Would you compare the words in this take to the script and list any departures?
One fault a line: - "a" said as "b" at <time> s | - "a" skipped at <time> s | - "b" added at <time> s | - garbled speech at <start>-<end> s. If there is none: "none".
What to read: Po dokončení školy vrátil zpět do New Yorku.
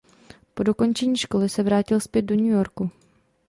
- "se" added at 1.5 s